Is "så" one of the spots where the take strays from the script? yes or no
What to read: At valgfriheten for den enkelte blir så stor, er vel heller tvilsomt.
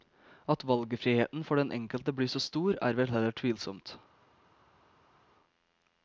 no